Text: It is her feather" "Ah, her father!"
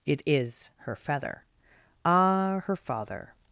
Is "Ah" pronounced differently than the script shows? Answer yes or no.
no